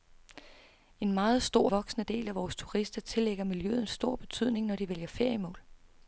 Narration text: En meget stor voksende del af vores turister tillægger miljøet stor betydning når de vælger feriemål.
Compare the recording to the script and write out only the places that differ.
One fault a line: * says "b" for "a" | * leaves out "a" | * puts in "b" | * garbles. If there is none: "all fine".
all fine